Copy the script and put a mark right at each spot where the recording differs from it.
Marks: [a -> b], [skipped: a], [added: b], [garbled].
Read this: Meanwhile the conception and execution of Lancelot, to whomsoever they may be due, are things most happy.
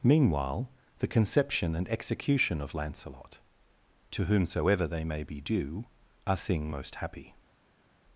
Meanwhile the conception and execution of Lancelot, to whomsoever they may be due, are [things -> thing] most happy.